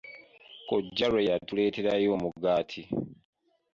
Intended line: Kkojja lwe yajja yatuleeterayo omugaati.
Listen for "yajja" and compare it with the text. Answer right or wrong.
wrong